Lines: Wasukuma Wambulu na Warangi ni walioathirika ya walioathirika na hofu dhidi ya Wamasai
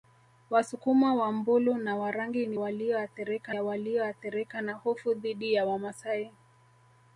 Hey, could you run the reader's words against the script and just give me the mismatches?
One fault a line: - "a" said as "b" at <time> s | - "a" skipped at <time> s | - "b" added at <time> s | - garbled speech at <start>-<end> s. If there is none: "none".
none